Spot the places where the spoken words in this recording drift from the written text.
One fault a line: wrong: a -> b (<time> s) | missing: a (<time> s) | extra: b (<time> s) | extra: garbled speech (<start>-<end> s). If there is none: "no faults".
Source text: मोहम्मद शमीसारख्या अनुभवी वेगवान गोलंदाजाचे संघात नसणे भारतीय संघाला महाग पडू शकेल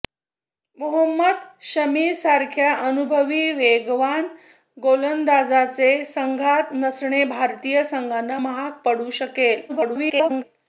extra: garbled speech (9.7-10.4 s)